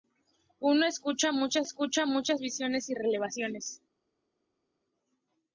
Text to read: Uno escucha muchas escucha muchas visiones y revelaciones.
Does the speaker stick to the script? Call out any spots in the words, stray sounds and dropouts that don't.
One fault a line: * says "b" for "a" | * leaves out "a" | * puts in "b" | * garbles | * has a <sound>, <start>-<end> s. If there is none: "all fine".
all fine